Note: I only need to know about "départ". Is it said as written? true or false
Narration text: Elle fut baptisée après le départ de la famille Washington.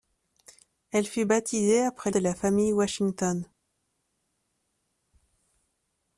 false